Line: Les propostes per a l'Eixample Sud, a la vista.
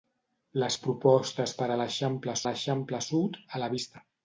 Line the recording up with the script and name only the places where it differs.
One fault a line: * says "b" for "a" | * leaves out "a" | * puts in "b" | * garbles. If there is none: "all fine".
* puts in "l'Eixample"